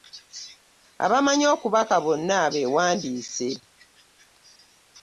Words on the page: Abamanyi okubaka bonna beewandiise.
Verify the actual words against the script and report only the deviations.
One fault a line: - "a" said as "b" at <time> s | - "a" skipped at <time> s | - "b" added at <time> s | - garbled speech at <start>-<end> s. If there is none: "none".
none